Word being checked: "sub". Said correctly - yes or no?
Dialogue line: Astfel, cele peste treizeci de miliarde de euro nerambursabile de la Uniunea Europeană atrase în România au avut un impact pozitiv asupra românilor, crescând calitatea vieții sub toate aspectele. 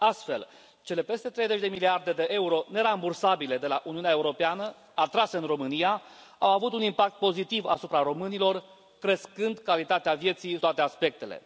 no